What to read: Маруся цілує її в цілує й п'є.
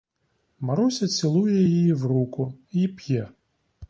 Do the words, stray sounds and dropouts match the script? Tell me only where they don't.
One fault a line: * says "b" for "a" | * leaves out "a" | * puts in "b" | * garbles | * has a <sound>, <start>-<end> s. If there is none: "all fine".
* says "руку" for "цілує"